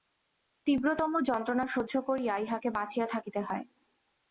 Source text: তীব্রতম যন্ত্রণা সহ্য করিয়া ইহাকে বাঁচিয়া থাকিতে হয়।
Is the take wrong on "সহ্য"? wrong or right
right